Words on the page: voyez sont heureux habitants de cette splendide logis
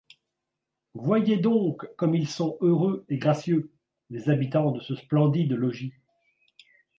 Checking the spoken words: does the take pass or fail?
fail